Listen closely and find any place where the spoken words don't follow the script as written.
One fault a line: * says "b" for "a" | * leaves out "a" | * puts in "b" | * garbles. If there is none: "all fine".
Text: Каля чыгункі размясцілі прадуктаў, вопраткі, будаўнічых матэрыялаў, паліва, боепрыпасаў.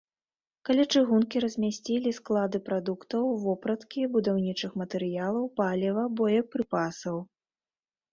* puts in "склады"